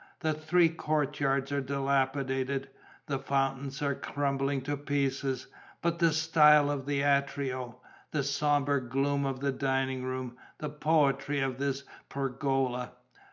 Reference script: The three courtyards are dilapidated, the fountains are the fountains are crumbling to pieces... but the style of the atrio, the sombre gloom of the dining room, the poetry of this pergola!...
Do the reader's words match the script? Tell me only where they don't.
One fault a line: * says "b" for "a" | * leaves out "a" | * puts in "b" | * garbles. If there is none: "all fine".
* leaves out "the fountains are"